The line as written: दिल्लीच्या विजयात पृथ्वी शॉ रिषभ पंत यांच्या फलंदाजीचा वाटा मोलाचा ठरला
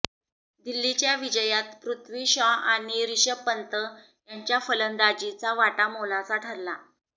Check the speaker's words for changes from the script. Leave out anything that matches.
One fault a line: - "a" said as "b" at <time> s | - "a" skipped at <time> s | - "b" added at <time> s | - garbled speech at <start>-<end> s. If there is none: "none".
- "आणि" added at 2.7 s